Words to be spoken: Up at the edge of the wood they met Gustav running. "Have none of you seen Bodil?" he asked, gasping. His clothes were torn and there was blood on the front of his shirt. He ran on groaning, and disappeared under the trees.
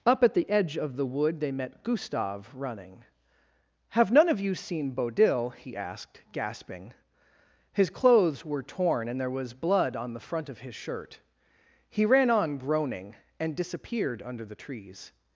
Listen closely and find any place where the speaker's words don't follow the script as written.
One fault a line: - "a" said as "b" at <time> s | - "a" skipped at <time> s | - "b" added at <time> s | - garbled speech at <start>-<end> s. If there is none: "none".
none